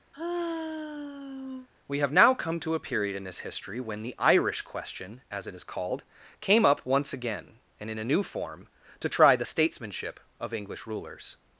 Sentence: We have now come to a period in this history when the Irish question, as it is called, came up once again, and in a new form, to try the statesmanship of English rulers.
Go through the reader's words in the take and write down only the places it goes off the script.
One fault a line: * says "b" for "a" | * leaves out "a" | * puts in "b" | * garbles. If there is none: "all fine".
all fine